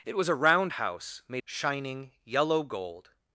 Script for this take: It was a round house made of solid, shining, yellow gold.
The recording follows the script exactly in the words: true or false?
false